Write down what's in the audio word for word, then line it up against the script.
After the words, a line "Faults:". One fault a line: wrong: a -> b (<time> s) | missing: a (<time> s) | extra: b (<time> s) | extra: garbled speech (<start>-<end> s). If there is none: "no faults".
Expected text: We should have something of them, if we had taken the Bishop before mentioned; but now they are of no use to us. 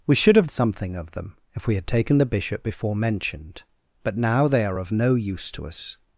We should have something of them, if we had taken the Bishop before mentioned; but now they are of no use to us.
Faults:
no faults